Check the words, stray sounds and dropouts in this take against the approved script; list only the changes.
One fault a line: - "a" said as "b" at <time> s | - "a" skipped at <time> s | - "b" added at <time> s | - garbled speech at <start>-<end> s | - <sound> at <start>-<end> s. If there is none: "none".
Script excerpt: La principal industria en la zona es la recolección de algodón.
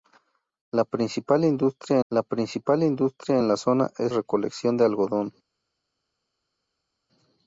- "la principal industria" added at 2.1 s
- "la" skipped at 4.1 s